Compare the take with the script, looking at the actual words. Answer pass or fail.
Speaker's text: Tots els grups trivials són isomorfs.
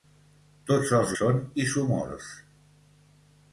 fail